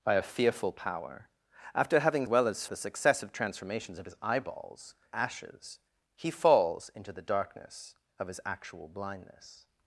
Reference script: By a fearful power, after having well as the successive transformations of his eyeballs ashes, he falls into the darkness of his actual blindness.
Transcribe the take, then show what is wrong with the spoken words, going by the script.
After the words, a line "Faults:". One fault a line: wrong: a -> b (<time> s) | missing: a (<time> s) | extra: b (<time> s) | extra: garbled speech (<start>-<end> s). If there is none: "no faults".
By a fearful power, after having well as the successive transformations of his eyeballs ashes, he falls into the darkness of his actual blindness.
Faults:
no faults